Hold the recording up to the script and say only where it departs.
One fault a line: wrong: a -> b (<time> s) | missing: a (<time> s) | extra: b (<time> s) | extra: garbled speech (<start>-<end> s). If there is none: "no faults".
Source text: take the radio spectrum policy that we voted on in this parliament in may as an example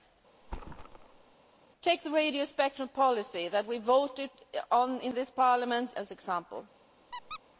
missing: in may (6.0 s)